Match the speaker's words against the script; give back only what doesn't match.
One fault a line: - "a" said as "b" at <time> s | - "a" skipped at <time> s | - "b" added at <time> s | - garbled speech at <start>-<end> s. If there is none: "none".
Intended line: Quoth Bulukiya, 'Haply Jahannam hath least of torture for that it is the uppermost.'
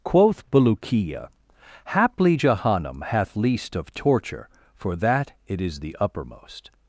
none